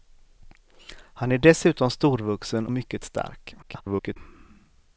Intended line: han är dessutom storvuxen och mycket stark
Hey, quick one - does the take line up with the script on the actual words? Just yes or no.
no